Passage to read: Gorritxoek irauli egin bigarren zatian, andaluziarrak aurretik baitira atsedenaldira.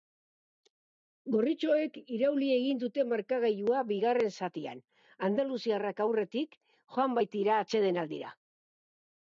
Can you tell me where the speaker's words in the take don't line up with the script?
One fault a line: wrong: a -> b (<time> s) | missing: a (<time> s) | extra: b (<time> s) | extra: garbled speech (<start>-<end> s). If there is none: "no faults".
extra: dute markagailua (2.9 s)
extra: joan (7.0 s)